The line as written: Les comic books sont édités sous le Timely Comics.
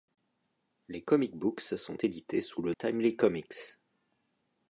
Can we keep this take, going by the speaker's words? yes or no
yes